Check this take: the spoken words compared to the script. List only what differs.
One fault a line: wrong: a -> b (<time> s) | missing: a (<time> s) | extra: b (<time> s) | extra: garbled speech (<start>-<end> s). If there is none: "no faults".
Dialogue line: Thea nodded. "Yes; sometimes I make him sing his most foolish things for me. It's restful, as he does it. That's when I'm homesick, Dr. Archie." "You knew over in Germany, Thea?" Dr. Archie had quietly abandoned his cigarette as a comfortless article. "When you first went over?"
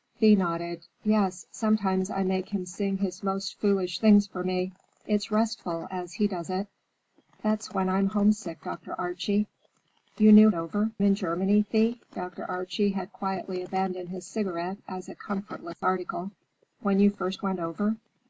no faults